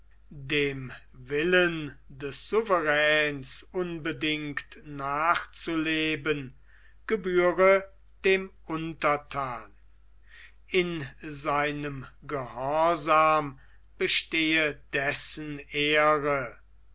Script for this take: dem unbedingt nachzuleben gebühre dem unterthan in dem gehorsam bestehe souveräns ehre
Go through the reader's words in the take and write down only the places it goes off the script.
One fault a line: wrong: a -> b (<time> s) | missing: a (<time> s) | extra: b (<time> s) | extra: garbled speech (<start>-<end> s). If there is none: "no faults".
extra: willen des souveräns (1.1 s)
wrong: dem -> seinem (11.2 s)
wrong: souveräns -> dessen (14.9 s)